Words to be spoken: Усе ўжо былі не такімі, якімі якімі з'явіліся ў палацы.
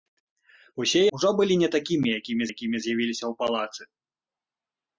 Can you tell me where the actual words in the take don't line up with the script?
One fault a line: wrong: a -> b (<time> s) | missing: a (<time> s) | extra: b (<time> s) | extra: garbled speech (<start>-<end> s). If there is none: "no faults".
no faults